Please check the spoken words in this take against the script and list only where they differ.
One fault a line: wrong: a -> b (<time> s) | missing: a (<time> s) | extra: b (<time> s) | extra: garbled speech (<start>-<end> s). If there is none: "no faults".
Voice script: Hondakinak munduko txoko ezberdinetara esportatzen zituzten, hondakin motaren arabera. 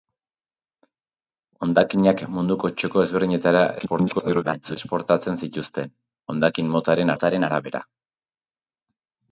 extra: garbled speech (3.8-4.8 s)
extra: motaren (7.1 s)